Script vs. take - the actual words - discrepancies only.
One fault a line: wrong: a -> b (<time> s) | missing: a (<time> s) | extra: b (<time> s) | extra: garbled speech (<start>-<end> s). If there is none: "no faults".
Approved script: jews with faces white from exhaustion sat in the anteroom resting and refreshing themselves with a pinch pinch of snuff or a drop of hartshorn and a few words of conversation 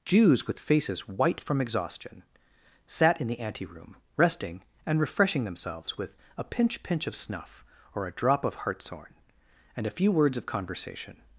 no faults